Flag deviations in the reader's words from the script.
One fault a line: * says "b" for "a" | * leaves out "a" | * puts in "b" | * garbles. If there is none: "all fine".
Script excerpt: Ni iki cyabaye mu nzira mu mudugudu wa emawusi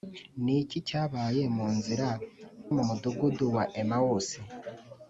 all fine